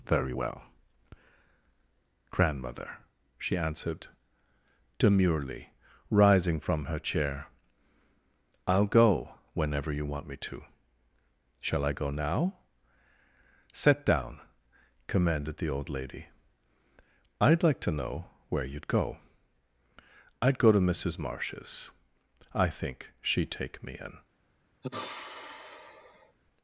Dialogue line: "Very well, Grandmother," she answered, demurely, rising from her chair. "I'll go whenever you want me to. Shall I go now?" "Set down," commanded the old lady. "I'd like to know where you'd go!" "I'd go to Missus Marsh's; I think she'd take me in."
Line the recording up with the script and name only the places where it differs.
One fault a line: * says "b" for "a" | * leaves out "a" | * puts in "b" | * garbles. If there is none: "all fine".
all fine